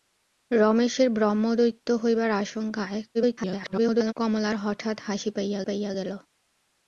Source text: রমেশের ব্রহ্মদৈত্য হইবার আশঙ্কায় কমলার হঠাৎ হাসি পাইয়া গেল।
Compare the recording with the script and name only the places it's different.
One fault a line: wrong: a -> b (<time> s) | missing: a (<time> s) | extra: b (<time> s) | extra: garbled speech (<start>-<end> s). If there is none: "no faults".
extra: garbled speech (3.1-4.1 s)
extra: পাইয়া (5.6 s)